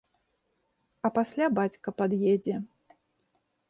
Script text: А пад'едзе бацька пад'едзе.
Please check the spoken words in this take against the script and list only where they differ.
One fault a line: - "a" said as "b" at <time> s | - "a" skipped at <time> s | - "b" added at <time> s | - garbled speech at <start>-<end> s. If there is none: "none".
- "пад'едзе" said as "пасля" at 1.2 s